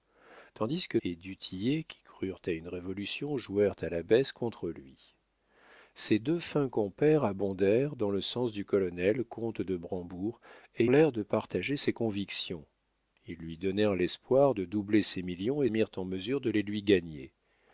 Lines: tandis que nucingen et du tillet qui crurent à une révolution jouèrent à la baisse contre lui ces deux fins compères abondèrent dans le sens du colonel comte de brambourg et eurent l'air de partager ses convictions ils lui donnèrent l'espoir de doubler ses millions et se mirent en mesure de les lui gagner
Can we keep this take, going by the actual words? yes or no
no